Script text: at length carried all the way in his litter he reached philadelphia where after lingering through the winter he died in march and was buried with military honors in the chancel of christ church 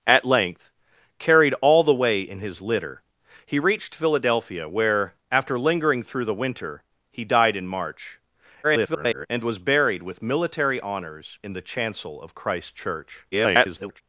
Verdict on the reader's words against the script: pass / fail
fail